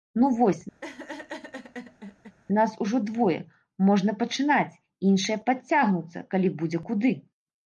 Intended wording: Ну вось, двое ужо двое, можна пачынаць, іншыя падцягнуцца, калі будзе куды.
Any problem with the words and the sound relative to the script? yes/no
yes